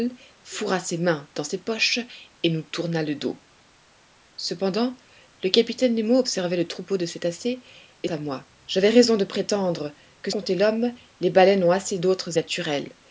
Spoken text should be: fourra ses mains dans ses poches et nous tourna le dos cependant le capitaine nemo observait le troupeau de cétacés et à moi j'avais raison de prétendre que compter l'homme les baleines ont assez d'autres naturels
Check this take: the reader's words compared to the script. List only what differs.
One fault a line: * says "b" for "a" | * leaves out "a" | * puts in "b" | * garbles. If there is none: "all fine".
all fine